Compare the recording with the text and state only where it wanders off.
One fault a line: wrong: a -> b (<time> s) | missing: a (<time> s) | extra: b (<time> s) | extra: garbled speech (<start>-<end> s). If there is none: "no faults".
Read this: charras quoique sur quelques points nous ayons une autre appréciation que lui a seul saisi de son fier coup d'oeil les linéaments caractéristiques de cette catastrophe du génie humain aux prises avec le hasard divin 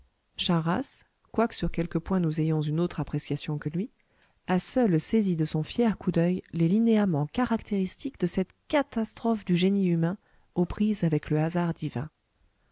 no faults